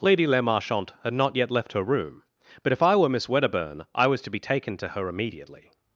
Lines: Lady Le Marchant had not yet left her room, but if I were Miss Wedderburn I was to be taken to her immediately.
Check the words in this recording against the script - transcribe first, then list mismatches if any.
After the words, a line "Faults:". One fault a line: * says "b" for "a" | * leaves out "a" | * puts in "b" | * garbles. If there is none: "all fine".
Lady Le Marchant had not yet left her room, but if I were Miss Wedderburn I was to be taken to her immediately.
Faults:
all fine